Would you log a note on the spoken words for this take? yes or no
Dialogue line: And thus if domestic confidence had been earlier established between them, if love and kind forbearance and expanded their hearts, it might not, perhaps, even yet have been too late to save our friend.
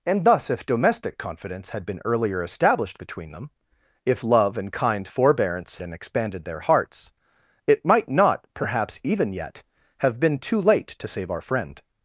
no